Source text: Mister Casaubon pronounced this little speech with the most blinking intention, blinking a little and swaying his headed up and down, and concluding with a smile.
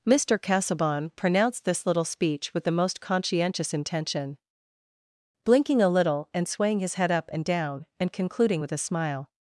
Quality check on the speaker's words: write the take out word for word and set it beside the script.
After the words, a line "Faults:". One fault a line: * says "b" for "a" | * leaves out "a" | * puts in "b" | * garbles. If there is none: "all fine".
Mister Casaubon pronounced this little speech with the most conscientious intention, blinking a little and swaying his head up and down, and concluding with a smile.
Faults:
* says "conscientious" for "blinking"
* says "head" for "headed"